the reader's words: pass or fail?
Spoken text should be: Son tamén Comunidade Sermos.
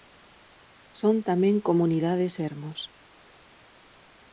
pass